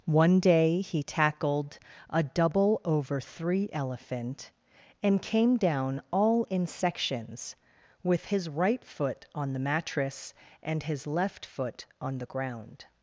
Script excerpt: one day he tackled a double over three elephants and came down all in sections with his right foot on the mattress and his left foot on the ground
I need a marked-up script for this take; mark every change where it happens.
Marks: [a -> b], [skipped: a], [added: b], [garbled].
one day he tackled a double over three [elephants -> elephant] and came down all in sections with his right foot on the mattress and his left foot on the ground